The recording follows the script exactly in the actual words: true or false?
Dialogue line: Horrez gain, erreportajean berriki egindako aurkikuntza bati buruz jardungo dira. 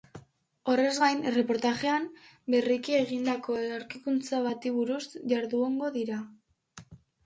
true